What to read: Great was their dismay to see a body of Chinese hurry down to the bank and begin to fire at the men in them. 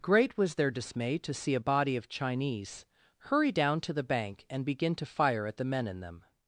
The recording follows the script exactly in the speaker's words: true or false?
true